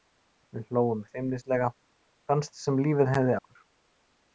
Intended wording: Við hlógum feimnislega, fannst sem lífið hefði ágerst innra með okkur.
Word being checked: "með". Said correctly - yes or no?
no